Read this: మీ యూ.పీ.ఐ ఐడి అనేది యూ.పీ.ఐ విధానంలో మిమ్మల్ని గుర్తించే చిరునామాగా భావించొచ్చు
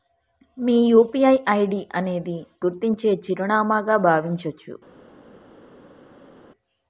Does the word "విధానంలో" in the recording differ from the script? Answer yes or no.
yes